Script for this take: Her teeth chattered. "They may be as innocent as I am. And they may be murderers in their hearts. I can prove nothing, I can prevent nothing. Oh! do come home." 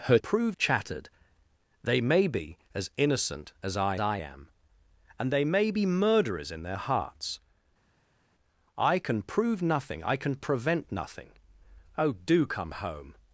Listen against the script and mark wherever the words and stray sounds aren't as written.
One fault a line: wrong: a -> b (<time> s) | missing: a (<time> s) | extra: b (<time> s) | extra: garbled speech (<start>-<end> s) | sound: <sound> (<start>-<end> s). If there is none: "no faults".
wrong: teeth -> prove (0.2 s)
extra: I (4.0 s)